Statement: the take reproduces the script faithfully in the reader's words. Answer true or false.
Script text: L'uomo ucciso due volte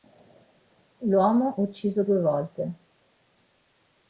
true